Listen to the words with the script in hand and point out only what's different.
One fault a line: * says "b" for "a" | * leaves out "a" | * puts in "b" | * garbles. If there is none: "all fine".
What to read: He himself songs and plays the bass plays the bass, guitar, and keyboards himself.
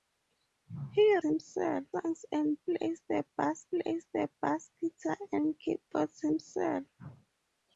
all fine